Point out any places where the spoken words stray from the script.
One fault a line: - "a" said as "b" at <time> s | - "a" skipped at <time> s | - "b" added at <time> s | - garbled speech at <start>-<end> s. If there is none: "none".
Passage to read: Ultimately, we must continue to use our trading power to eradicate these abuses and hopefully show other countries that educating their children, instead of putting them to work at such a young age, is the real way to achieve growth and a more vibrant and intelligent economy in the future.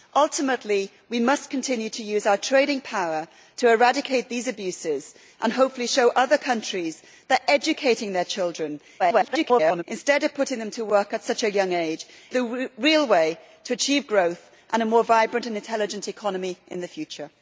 - garbled speech at 9.0-9.8 s
- "is" skipped at 12.1 s